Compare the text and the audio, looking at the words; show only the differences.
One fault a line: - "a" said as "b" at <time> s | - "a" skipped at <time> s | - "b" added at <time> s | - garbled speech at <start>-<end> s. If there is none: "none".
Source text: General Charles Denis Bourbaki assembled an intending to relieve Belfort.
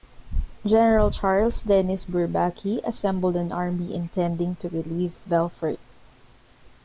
- "army" added at 3.5 s